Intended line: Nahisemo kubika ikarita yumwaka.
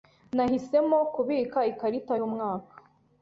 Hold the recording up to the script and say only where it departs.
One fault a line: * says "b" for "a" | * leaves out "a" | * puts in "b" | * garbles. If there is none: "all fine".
all fine